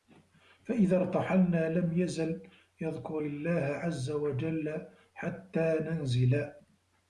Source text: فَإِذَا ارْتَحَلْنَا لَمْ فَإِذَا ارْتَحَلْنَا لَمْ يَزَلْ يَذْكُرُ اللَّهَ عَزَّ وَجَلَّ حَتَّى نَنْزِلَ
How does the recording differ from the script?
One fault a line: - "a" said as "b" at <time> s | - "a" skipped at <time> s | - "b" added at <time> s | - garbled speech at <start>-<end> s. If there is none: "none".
- "فَإِذَا ارْتَحَلْنَا لَمْ" skipped at 2.0 s